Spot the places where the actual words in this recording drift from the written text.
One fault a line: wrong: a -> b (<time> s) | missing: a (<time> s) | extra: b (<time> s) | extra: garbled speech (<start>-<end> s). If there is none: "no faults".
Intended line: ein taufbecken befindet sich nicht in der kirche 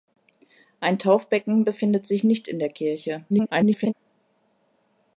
extra: garbled speech (3.3-3.9 s)